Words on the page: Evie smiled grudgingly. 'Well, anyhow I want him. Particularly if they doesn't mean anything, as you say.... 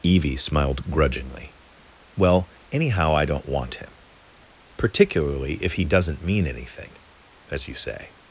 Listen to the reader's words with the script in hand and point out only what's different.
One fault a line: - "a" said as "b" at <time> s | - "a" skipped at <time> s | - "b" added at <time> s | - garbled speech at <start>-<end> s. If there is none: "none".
- "don't" added at 3.2 s
- "they" said as "he" at 5.7 s